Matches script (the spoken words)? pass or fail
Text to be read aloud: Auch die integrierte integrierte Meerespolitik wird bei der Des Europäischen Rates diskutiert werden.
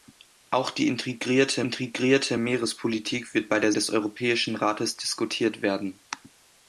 pass